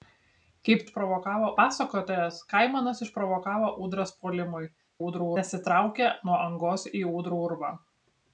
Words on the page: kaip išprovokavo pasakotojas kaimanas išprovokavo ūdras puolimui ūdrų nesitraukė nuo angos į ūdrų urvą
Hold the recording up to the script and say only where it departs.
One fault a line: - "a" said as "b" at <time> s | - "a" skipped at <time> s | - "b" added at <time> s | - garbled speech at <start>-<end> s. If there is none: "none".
none